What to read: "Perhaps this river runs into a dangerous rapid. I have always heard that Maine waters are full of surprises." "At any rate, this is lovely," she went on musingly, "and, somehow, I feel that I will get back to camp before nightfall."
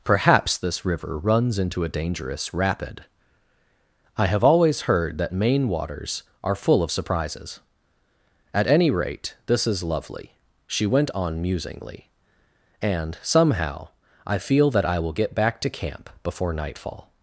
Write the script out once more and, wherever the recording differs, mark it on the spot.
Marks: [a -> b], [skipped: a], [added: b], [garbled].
"Perhaps this river runs into a dangerous rapid. I have always heard that Maine waters are full of surprises." "At any rate, this is lovely," she went on musingly, "and, somehow, I feel that I will get back to camp before nightfall."